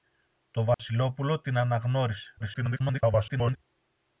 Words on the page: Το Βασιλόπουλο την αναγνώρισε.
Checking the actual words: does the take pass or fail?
fail